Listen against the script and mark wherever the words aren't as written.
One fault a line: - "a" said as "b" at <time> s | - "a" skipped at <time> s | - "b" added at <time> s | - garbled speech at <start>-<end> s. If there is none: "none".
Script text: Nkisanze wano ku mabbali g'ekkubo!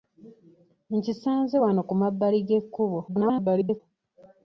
- garbled speech at 3.1-3.8 s